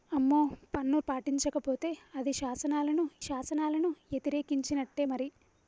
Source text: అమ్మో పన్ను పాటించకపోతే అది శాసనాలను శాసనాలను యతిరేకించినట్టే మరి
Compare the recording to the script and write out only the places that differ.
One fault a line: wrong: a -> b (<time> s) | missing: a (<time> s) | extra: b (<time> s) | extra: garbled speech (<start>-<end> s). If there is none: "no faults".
no faults